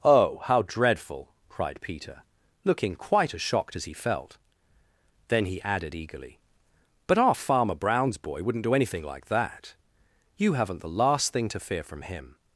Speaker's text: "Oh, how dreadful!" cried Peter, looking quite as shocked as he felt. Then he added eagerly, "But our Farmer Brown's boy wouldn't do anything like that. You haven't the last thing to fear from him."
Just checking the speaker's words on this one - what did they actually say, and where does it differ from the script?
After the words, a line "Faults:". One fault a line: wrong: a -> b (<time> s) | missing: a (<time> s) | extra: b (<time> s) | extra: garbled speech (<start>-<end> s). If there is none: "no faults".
"Oh, how dreadful!" cried Peter, looking quite as shocked as he felt. Then he added eagerly, "But our Farmer Brown's boy wouldn't do anything like that. You haven't the last thing to fear from him."
Faults:
no faults